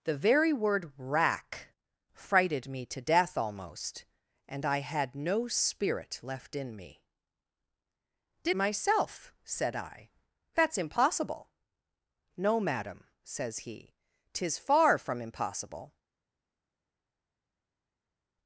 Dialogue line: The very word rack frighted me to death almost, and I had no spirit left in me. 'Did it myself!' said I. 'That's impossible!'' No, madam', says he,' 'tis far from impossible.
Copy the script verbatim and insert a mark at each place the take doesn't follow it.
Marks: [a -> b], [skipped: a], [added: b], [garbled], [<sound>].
The very word rack frighted me to death almost, and I had no spirit left in me. 'Did [skipped: it] myself!' said I. 'That's impossible!'' No, madam', says he,' 'tis far from impossible.